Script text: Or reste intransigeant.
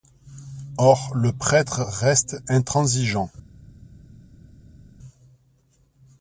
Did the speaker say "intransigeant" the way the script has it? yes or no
yes